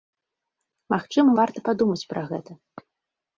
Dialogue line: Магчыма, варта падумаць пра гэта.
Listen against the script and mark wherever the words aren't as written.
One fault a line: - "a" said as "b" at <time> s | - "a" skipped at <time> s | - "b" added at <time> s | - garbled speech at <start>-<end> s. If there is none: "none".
none